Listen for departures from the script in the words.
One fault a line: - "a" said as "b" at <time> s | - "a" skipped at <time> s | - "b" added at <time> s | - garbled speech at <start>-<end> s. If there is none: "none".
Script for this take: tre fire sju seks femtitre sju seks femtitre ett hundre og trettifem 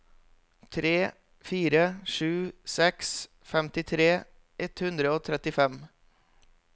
- "sju seks femtitre" skipped at 4.1 s